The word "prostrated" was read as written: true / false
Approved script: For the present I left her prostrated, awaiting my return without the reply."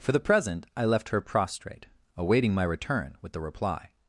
false